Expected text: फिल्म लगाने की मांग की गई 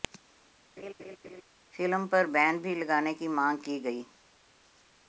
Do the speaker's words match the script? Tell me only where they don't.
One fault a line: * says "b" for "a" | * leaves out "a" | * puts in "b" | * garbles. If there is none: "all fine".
* puts in "पर बैन भी"